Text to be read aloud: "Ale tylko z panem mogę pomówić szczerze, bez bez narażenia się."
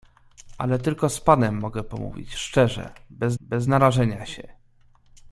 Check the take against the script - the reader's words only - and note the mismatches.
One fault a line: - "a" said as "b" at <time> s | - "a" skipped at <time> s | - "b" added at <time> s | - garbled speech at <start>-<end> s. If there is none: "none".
none